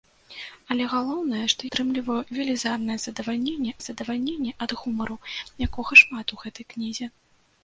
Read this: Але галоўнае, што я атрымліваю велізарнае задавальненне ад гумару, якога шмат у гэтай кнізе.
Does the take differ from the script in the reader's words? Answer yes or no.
yes